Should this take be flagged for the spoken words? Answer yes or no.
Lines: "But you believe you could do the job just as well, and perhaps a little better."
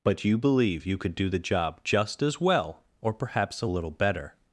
yes